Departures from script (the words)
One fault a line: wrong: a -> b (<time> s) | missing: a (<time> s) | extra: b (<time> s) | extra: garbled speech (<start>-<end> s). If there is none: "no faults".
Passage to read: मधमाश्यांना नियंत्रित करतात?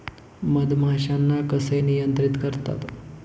extra: कसे (1.5 s)